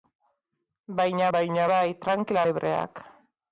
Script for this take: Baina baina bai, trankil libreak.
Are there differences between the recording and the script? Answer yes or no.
no